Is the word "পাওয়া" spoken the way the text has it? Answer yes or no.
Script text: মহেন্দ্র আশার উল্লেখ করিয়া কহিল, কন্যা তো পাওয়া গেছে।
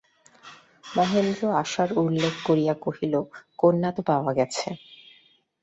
yes